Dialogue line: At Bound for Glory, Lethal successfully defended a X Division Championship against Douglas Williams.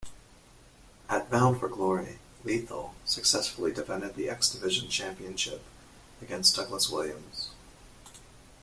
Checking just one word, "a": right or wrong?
wrong